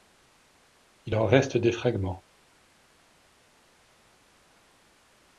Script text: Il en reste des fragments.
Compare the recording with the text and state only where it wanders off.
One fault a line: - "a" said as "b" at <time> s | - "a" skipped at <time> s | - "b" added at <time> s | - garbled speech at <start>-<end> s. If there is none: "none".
none